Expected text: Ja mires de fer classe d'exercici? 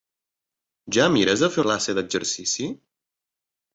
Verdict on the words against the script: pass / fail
pass